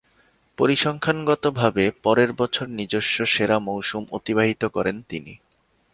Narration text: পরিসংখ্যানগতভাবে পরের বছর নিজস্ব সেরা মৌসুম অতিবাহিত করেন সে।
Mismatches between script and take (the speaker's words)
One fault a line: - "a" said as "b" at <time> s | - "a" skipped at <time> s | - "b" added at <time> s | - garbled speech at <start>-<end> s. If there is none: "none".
- "সে" said as "তিনি" at 5.1 s